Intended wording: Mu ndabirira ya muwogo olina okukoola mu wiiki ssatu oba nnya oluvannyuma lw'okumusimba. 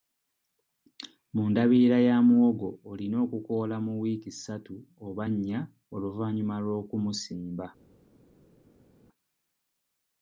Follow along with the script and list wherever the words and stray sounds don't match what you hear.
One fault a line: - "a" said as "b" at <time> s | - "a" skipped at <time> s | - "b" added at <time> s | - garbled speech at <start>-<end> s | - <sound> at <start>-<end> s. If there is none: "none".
none